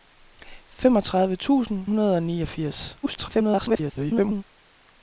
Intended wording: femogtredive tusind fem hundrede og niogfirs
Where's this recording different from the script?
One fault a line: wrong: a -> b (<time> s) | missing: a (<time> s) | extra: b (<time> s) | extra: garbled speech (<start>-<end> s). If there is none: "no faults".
missing: fem (1.9 s)
extra: garbled speech (3.0-4.4 s)